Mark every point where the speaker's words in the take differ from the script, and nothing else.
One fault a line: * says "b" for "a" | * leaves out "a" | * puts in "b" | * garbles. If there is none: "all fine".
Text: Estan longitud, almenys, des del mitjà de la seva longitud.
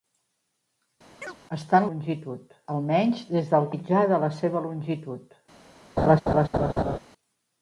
all fine